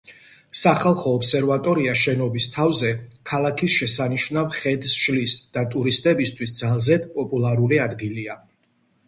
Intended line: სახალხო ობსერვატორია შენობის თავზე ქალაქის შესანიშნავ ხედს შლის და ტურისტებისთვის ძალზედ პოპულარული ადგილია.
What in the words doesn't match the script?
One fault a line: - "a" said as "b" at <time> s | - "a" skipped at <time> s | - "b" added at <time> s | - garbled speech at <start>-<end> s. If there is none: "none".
none